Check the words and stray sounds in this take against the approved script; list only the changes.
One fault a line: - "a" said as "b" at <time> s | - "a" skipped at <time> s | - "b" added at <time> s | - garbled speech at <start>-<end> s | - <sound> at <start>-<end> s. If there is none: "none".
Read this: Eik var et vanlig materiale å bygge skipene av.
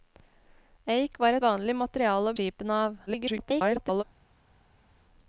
- "et" skipped at 1.4 s
- "bygge" skipped at 2.4 s
- garbled speech at 3.1-4.0 s